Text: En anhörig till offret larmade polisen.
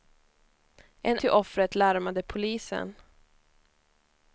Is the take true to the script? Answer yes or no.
no